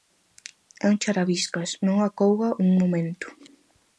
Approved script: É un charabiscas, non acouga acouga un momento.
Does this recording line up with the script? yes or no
no